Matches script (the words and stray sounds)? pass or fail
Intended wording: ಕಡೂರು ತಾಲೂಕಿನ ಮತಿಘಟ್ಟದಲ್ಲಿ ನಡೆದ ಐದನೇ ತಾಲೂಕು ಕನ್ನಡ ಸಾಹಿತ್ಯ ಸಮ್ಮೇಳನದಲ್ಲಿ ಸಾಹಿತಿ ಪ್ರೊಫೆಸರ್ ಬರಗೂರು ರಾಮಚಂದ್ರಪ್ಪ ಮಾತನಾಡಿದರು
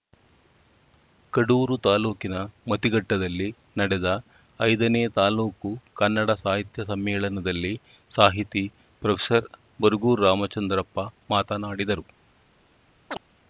fail